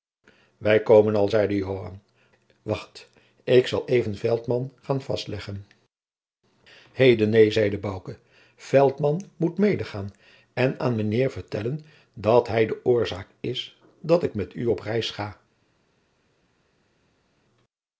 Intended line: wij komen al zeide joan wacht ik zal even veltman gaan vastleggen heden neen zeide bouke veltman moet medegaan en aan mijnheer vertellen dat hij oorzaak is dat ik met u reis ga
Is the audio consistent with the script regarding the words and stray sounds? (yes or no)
no